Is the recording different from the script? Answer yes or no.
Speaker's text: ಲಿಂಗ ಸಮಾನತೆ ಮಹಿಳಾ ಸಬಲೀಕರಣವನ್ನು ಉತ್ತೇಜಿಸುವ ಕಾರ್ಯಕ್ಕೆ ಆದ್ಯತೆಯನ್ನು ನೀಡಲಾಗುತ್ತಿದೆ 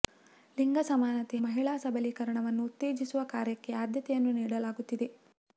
no